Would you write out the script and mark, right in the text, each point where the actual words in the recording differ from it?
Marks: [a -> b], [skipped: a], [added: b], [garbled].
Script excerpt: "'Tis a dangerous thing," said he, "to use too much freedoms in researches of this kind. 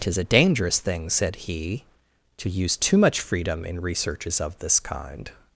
"'Tis a dangerous thing," said he, "to use too much [freedoms -> freedom] in researches of this kind.